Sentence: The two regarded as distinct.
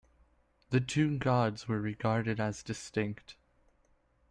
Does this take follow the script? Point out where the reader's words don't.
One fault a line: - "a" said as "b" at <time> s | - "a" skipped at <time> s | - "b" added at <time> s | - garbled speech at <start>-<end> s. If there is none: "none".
- "gods were" added at 1.2 s